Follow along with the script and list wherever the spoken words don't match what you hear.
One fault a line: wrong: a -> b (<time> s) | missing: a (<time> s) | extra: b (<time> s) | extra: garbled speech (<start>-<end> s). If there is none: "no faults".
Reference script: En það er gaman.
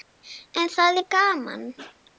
no faults